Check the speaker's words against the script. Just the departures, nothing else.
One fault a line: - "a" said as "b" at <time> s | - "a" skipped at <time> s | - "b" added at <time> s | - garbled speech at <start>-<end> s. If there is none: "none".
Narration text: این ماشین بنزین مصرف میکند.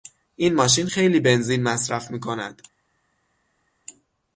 - "خیلی" added at 0.8 s